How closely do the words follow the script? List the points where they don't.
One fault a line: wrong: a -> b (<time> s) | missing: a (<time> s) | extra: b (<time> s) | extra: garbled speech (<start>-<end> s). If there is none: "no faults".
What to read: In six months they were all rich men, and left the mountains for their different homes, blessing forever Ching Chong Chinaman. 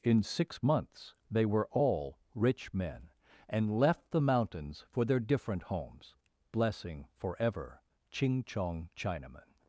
no faults